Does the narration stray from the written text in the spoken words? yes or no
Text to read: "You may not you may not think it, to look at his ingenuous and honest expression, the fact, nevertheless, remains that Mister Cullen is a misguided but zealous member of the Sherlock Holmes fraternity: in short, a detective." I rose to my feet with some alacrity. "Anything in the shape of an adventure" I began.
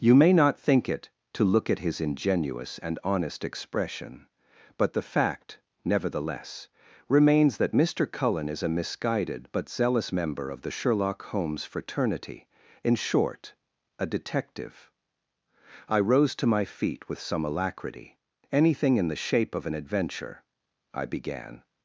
yes